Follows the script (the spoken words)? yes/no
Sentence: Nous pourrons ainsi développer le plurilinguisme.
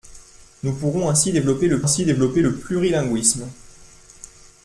no